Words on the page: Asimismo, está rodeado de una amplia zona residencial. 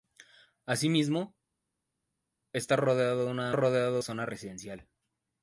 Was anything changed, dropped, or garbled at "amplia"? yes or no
yes